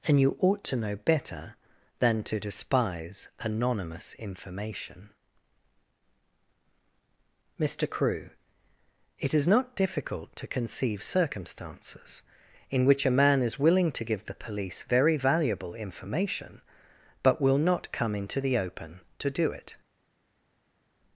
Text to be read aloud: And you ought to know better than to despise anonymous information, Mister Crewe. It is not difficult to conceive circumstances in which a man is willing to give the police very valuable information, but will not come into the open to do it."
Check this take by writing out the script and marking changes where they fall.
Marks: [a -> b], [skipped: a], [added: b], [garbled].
And you ought to know better than to despise anonymous information, Mister Crewe. It is not difficult to conceive circumstances in which a man is willing to give the police very valuable information, but will not come into the open to do it."